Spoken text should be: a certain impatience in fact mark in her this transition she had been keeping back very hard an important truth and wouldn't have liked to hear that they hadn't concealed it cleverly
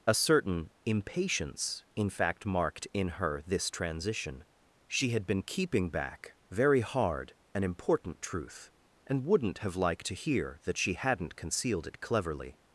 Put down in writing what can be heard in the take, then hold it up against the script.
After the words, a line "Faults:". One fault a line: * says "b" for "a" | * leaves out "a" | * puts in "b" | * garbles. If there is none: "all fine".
a certain impatience in fact marked in her this transition she had been keeping back very hard an important truth and wouldn't have liked to hear that she hadn't concealed it cleverly
Faults:
* says "marked" for "mark"
* says "she" for "they"